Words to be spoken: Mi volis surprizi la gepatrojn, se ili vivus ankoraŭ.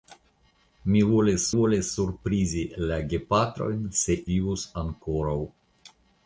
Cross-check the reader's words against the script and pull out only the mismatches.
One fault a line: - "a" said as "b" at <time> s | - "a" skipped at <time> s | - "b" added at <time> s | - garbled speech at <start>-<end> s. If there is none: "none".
- "volis" added at 1.5 s
- "ili" skipped at 4.2 s